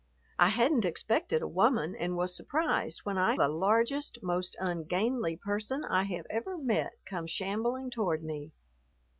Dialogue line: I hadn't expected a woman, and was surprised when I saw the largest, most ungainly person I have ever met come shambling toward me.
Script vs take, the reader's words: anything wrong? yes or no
yes